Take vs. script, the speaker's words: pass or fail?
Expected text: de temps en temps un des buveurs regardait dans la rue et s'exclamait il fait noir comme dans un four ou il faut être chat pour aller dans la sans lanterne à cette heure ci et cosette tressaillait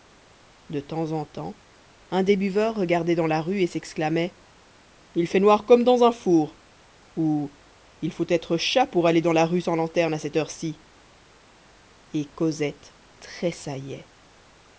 fail